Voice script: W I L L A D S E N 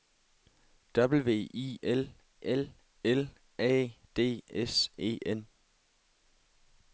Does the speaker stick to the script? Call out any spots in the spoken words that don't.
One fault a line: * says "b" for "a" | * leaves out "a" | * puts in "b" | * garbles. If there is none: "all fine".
* puts in "L"